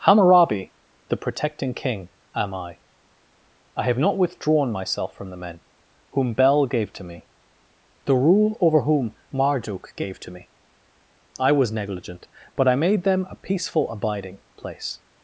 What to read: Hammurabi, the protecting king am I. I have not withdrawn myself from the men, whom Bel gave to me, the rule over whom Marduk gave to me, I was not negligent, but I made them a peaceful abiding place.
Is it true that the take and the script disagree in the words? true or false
true